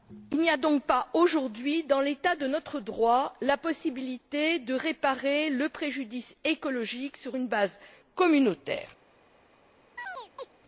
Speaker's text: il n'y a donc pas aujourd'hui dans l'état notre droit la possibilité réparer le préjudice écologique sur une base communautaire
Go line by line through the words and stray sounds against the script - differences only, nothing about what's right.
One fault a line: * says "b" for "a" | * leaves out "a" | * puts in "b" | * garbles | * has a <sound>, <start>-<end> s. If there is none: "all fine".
* puts in "de"
* puts in "de"
* has a chirp, 10.0-10.5 s